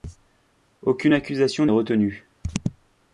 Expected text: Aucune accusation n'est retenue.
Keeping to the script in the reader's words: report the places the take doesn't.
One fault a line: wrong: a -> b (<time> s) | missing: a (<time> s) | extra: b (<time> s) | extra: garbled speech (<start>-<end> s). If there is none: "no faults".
missing: n'est (1.6 s)